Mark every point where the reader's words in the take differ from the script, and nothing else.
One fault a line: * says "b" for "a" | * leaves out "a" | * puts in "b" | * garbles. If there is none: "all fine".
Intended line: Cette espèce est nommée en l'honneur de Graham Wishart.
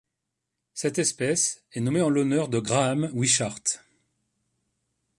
all fine